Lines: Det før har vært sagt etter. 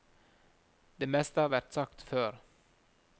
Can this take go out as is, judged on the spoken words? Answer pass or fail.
fail